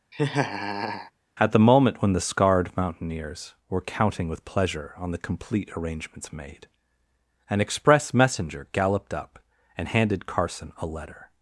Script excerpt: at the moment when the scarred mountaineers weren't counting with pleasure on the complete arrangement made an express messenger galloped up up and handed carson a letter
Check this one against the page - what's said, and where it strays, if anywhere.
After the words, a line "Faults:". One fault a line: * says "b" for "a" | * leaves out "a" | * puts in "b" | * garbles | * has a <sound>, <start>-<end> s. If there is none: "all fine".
at the moment when the scarred mountaineers were counting with pleasure on the complete arrangements made an express messenger galloped up and handed carson a letter
Faults:
* has a laugh, 0.1-1.1 s
* says "were" for "weren't"
* says "arrangements" for "arrangement"
* leaves out "up"